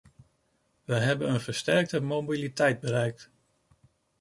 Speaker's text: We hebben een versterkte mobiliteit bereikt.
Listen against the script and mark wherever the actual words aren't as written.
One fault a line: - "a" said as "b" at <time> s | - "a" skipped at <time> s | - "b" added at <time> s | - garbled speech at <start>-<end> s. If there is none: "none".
none